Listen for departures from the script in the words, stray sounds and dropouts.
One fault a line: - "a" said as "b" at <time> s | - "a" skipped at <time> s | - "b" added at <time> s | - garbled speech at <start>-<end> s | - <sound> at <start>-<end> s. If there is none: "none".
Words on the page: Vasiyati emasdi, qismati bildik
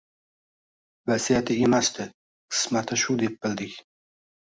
- "shu deb" added at 3.0 s